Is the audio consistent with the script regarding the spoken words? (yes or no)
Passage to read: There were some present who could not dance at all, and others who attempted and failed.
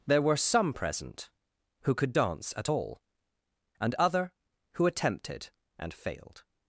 no